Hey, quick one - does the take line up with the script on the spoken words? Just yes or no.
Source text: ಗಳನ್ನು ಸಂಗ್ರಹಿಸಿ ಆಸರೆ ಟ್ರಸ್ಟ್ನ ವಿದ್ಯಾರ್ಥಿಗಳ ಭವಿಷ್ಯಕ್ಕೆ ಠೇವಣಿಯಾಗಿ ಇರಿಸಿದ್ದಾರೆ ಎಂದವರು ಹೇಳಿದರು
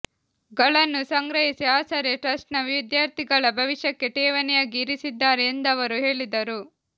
yes